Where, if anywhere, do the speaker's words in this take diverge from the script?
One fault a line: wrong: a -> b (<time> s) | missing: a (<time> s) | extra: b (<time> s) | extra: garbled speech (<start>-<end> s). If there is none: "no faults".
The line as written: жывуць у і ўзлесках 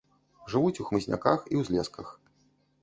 extra: хмызняках (0.9 s)